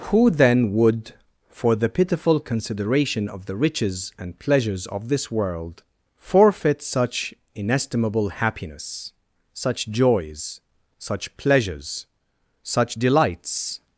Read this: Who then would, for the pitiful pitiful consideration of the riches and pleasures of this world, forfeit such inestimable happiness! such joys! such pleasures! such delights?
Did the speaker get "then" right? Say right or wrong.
right